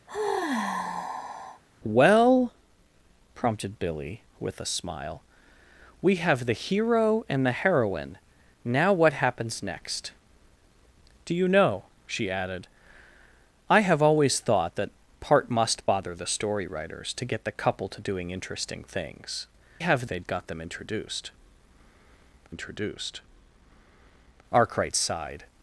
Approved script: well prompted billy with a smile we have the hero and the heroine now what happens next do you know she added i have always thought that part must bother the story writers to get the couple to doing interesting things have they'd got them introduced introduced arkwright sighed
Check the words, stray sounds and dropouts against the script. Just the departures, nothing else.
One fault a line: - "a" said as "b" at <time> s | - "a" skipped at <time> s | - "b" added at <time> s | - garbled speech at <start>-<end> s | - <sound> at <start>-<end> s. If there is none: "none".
- sigh at 0.1-1.6 s